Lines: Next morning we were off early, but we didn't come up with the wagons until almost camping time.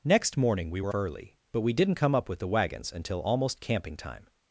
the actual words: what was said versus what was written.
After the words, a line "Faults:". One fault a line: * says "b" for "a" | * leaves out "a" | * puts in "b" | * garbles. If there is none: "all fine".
Next morning we were early, but we didn't come up with the wagons until almost camping time.
Faults:
* leaves out "off"